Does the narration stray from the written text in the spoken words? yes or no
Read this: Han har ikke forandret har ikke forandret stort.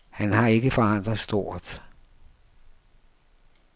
yes